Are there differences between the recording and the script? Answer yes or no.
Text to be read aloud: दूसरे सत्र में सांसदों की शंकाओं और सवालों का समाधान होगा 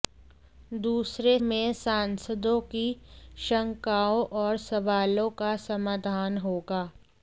yes